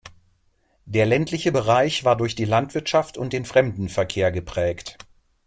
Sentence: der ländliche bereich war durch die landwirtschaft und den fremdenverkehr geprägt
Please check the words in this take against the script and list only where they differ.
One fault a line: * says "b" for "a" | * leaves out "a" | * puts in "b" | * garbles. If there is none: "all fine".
all fine